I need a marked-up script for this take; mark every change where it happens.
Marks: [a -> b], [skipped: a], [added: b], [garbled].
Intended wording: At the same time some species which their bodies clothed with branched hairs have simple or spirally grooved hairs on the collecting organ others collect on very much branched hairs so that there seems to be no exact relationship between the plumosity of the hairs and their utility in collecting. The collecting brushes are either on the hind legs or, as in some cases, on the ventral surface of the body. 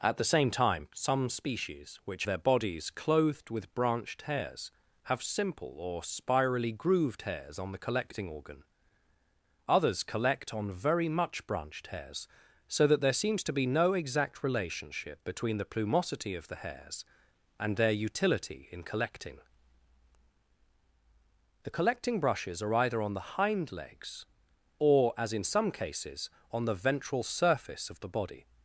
At the same time some species which their bodies clothed with branched hairs have simple or spirally grooved hairs on the collecting organ others collect on very much branched hairs so that there seems to be no exact relationship between the plumosity of the hairs and their utility in collecting. The collecting brushes are either on the hind legs or, as in some cases, on the ventral surface of the body.